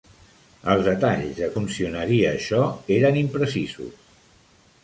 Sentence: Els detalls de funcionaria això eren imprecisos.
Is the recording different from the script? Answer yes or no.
no